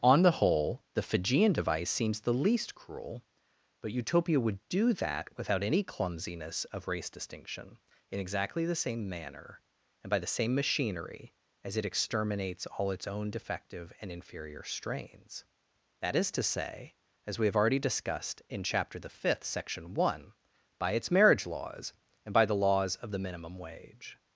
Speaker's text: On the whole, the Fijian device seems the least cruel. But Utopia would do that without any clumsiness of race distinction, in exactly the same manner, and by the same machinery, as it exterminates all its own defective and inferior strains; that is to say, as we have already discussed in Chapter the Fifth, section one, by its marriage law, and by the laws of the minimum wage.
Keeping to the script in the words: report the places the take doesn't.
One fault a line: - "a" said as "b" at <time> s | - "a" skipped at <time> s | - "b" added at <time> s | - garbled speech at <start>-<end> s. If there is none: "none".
- "law" said as "laws" at 21.5 s